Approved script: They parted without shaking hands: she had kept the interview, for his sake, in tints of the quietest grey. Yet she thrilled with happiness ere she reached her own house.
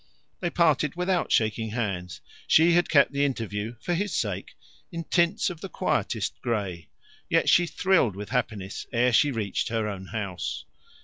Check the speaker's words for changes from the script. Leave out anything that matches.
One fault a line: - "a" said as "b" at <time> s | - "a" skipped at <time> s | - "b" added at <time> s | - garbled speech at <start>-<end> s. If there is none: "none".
none